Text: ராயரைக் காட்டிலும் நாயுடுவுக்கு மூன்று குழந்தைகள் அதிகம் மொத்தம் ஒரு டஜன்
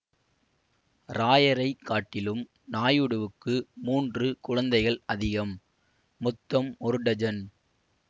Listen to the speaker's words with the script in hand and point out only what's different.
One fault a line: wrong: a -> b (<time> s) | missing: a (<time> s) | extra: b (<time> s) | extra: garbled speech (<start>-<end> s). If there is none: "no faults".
no faults